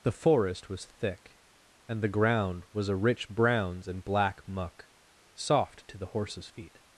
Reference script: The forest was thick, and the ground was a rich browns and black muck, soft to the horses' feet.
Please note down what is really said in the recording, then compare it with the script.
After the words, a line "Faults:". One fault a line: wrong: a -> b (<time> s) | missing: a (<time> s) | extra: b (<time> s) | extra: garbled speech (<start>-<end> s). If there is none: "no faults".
The forest was thick, and the ground was a rich browns and black muck, soft to the horses' feet.
Faults:
no faults